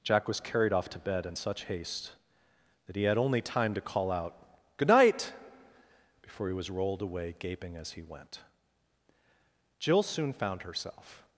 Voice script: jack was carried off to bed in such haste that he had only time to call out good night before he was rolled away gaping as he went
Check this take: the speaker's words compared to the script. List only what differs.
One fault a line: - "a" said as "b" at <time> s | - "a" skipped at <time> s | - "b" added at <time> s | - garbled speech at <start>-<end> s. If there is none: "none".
- "jill soon found herself" added at 9.8 s